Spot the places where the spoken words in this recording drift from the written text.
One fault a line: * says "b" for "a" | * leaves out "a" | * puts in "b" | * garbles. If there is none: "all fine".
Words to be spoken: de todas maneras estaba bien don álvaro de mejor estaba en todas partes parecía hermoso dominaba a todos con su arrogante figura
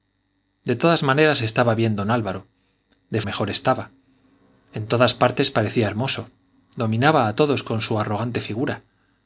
all fine